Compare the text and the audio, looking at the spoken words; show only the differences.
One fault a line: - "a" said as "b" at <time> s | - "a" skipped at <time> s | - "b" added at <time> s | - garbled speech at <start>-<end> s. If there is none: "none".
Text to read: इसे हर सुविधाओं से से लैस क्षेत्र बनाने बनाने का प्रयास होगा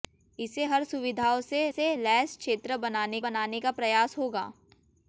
none